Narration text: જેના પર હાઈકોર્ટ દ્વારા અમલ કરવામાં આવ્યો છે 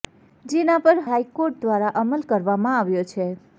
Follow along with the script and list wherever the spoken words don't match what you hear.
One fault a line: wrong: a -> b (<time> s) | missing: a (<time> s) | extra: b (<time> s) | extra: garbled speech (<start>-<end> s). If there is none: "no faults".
no faults